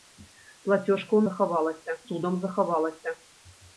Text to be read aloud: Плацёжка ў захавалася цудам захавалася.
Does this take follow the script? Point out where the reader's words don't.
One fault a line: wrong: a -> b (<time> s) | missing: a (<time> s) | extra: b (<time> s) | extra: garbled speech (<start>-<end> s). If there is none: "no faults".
no faults